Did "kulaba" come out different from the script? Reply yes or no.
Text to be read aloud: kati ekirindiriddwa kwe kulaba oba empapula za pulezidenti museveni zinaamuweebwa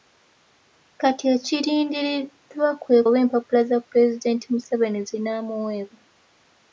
yes